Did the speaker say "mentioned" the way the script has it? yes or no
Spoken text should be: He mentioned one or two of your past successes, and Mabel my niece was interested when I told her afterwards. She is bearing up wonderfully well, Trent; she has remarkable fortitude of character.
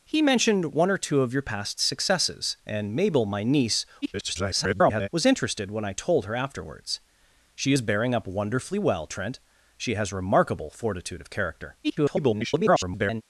yes